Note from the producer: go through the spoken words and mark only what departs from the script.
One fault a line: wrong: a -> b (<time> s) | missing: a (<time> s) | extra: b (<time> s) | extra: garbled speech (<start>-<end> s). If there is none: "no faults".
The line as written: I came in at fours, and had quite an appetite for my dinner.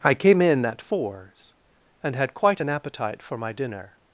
no faults